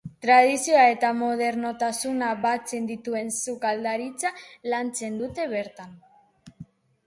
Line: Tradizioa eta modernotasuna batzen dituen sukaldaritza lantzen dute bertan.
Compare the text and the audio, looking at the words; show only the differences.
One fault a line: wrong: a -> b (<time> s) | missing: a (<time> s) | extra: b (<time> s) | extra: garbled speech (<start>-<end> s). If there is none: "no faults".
no faults